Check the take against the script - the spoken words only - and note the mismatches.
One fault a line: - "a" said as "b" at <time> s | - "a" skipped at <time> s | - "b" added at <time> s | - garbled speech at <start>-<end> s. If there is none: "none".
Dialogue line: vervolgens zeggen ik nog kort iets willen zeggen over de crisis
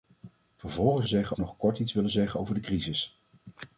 none